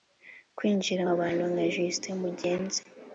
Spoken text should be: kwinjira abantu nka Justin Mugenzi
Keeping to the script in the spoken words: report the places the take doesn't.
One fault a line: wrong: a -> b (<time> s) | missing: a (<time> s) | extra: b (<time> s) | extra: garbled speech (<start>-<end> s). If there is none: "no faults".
no faults